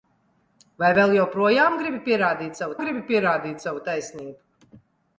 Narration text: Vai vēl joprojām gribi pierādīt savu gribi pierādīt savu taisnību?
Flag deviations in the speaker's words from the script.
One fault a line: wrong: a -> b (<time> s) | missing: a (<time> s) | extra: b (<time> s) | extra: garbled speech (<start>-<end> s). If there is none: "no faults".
no faults